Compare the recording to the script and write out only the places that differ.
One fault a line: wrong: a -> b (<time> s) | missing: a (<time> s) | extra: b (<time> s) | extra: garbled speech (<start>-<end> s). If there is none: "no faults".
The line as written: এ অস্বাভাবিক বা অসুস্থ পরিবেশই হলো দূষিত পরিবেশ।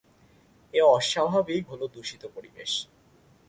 missing: বা অসুস্থ পরিবেশই (1.6 s)